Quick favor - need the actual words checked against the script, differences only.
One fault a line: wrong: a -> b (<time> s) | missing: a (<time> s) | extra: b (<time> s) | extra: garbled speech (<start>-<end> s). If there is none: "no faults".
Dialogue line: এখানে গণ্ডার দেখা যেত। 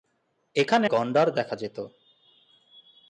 no faults